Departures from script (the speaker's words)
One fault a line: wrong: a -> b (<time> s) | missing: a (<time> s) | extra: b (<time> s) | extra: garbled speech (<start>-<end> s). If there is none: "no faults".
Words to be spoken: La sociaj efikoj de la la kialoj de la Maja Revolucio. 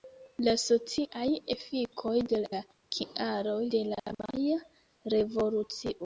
no faults